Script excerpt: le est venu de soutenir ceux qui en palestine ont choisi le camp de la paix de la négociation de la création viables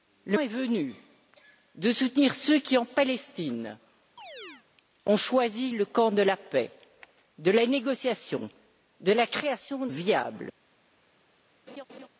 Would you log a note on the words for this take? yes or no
no